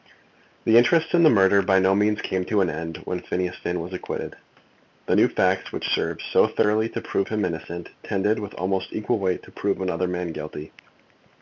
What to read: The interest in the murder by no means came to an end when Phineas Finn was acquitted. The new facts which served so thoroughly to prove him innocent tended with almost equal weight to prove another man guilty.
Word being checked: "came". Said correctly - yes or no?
yes